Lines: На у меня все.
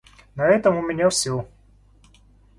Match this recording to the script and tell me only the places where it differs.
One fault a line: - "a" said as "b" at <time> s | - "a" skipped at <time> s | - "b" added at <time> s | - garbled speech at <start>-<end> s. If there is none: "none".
- "этом" added at 0.5 s